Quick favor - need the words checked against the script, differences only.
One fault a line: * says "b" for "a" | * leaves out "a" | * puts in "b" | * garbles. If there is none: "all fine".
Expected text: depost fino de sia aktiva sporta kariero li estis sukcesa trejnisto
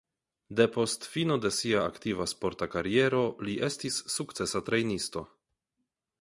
all fine